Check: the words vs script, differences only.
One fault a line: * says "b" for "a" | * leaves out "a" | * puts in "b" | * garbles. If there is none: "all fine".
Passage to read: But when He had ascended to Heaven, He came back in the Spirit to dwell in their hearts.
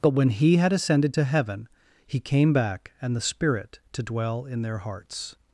* says "and" for "in"